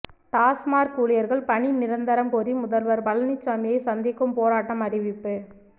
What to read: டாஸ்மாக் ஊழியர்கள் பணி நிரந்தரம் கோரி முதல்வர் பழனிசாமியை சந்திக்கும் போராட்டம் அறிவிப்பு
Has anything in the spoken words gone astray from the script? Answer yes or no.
no